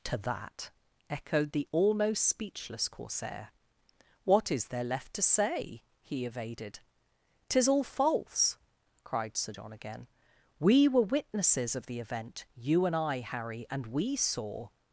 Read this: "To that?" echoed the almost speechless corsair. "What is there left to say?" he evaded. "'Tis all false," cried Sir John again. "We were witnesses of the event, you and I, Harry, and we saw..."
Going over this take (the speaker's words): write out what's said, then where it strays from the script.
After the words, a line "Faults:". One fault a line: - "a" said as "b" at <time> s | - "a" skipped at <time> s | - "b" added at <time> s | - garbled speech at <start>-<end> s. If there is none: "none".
"To that?" echoed the almost speechless corsair. "What is there left to say?" he evaded. "'Tis all false," cried Sir John again. "We were witnesses of the event, you and I, Harry, and we saw..."
Faults:
none